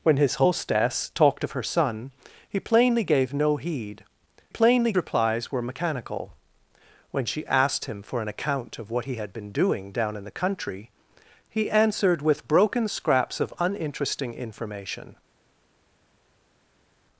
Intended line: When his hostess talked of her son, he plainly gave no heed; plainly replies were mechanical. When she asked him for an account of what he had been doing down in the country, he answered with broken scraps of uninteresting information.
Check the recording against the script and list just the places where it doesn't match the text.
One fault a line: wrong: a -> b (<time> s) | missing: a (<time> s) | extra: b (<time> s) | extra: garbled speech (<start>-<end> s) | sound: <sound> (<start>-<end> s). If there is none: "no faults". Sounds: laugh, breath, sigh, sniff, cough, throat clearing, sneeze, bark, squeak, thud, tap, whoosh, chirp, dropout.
no faults